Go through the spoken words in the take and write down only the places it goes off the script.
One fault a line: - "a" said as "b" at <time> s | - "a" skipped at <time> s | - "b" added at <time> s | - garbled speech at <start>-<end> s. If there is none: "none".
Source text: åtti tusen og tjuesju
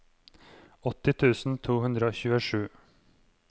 - "to hundre" added at 1.7 s